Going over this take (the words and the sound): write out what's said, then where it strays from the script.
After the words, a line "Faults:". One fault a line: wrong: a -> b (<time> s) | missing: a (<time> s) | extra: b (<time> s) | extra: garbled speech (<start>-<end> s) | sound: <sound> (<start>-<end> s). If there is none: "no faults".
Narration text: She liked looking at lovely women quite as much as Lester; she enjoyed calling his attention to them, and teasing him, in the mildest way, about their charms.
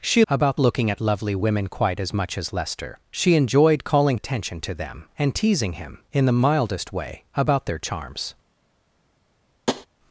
She about looking at lovely women quite as much as Lester; she enjoyed calling attention to them, and teasing him, in the mildest way, about their charms.
Faults:
wrong: liked -> about (0.3 s)
missing: his (4.2 s)
sound: tap (9.7-9.9 s)